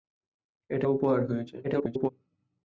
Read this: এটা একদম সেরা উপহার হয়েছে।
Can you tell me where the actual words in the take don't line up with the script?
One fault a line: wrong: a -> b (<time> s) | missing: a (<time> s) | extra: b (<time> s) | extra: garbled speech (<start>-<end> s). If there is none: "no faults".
missing: একদম সেরা (0.8 s)
extra: garbled speech (1.6-2.1 s)